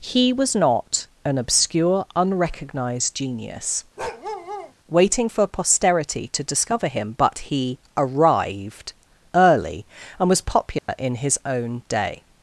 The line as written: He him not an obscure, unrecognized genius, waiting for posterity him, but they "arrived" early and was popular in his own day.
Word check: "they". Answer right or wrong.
wrong